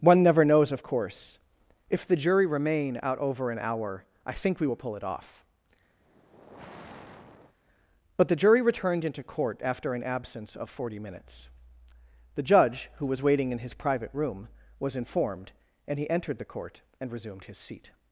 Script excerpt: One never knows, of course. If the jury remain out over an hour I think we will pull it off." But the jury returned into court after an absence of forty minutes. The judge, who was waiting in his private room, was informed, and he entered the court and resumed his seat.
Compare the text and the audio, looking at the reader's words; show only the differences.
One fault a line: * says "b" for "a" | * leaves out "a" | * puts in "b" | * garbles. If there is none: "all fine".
all fine